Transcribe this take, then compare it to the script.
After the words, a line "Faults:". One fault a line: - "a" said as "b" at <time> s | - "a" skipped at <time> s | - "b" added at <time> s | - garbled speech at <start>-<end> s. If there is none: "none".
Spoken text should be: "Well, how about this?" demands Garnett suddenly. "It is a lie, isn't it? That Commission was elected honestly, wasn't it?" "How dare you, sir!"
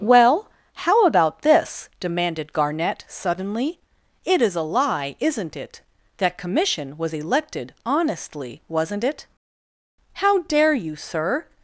"Well, how about this?" demanded Garnett suddenly. "It is a lie, isn't it? That Commission was elected honestly, wasn't it?" "How dare you, sir!"
Faults:
- "demands" said as "demanded" at 2.0 s